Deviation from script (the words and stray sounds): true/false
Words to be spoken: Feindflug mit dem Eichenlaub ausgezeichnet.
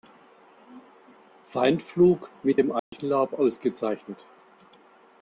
true